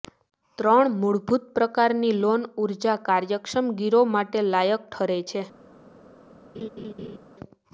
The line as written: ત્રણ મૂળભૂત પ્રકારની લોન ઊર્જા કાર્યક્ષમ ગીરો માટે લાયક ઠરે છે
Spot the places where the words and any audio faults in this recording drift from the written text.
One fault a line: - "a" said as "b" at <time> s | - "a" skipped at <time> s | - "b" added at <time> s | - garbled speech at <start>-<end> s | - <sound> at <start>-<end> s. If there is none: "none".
- laugh at 6.5-7.2 s